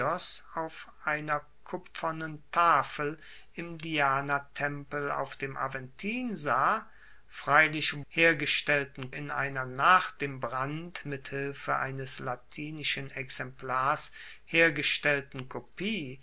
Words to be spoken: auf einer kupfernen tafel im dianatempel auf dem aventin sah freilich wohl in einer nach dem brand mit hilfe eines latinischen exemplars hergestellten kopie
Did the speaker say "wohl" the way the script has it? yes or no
no